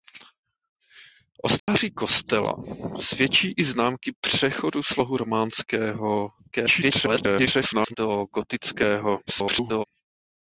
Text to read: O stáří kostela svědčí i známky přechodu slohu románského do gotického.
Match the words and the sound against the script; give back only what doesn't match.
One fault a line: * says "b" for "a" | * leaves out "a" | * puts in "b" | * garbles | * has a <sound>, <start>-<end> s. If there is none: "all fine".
* has a dropout, 1.6-1.7 s
* garbles
* garbles